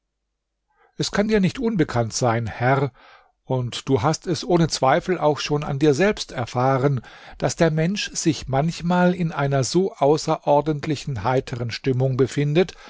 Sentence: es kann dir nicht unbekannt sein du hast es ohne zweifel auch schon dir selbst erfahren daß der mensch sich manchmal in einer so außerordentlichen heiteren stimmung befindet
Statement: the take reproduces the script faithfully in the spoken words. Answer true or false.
false